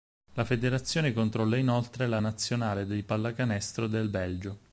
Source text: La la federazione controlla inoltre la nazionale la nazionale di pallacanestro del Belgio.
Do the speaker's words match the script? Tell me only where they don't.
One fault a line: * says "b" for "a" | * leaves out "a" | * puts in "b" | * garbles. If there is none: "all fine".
* leaves out "la"
* leaves out "la nazionale"